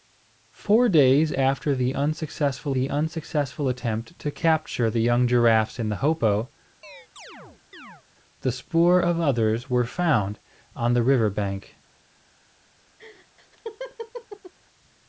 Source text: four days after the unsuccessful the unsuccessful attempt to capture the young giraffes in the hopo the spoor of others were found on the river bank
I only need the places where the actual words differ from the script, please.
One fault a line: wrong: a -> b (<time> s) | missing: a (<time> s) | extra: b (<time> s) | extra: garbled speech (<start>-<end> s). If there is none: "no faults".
no faults